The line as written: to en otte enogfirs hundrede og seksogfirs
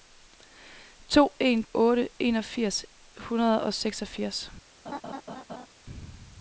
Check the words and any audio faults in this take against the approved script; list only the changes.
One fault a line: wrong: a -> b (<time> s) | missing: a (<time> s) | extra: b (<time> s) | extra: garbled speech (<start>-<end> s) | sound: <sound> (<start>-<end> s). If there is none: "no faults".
sound: laugh (4.9-5.7 s)